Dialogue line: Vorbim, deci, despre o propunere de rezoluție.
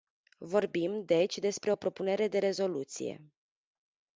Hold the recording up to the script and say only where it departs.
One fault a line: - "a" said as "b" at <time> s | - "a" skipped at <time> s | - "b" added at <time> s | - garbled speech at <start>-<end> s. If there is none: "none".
none